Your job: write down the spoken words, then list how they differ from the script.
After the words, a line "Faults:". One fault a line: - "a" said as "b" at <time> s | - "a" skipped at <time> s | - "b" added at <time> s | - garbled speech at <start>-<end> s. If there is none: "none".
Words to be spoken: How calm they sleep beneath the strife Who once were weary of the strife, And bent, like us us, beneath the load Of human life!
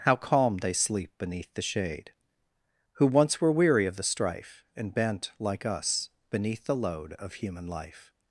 How calm they sleep beneath the shade Who once were weary of the strife, And bent, like us, beneath the load Of human life!
Faults:
- "strife" said as "shade" at 1.6 s
- "us" skipped at 6.1 s